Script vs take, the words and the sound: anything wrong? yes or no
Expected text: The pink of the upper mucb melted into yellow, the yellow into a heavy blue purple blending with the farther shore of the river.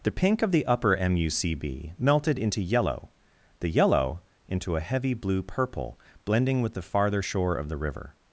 no